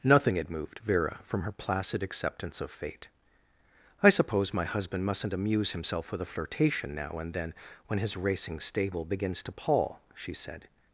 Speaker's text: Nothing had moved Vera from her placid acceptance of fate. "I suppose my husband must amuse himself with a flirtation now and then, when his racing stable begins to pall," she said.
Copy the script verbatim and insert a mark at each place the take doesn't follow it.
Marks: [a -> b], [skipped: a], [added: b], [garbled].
Nothing had moved Vera from her placid acceptance of fate. "I suppose my husband [must -> mustn't] amuse himself with a flirtation now and then, when his racing stable begins to pall," she said.